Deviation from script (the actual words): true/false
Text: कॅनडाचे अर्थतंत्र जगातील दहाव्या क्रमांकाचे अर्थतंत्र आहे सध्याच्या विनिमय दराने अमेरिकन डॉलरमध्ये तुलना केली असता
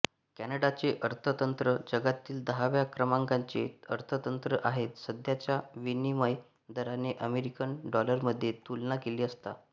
false